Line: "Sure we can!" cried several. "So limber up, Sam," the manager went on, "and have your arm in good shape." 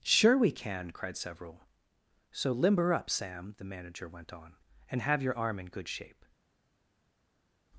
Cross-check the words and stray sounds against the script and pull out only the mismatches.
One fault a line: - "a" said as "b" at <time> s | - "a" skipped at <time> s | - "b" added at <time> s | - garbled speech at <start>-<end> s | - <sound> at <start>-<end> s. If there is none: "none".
none